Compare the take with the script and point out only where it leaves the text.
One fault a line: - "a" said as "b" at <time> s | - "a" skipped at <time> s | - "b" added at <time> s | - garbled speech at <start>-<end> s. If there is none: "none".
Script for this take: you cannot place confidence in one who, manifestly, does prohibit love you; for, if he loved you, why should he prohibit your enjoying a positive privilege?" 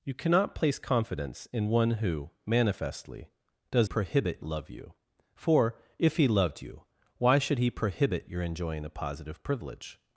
none